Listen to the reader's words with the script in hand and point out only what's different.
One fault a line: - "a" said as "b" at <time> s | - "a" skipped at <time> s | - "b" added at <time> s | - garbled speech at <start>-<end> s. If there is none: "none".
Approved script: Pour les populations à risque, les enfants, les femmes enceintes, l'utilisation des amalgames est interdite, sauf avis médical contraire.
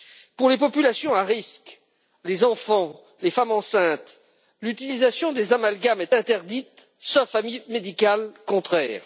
none